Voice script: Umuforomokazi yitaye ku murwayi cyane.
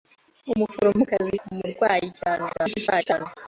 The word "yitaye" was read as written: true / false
false